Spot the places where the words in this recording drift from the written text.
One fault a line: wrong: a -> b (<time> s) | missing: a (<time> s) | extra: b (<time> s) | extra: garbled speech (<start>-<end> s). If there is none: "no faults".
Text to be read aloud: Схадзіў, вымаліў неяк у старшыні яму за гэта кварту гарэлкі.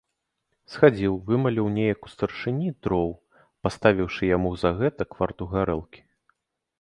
extra: дроў паставіўшы (2.9 s)